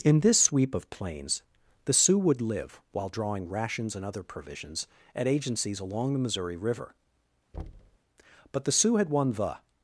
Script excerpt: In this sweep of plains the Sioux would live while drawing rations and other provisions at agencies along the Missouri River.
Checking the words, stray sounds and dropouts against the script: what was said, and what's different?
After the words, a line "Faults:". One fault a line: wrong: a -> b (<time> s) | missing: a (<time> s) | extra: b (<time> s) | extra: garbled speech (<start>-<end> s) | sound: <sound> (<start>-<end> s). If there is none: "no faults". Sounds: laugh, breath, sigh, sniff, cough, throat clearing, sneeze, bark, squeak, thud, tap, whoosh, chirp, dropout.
In this sweep of plains the Sioux would live while drawing rations and other provisions at agencies along the Missouri River. But the Sioux had won the
Faults:
sound: thud (7.5-8.0 s)
extra: But the Sioux had won the (8.5 s)